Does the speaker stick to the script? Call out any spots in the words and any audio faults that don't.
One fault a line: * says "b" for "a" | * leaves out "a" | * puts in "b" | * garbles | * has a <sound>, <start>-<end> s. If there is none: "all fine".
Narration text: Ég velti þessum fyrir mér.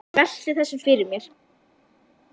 all fine